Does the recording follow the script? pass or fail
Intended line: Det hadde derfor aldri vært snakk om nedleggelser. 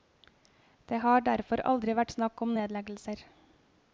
fail